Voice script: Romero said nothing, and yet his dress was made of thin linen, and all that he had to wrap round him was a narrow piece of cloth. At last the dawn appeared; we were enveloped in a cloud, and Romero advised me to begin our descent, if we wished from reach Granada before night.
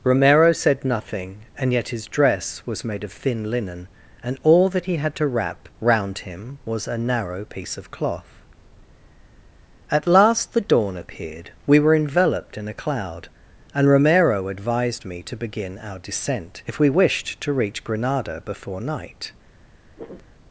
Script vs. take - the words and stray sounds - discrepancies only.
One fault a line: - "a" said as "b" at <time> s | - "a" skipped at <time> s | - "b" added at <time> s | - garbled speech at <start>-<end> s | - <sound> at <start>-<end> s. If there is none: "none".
- "from" said as "to" at 17.4 s
- throat clearing at 20.0-20.3 s